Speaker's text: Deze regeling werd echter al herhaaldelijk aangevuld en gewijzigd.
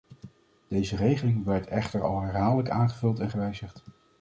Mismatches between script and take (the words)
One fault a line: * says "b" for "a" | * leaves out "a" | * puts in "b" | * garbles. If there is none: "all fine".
all fine